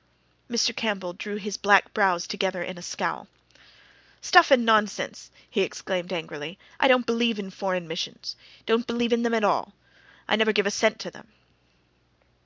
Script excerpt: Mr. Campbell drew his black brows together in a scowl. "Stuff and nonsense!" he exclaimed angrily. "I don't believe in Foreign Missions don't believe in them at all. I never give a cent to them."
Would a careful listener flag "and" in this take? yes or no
no